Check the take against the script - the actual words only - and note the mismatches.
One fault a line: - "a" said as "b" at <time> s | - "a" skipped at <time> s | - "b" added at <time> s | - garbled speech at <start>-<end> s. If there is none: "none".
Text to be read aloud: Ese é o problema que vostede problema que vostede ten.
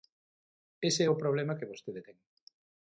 - "problema que vostede" skipped at 2.0 s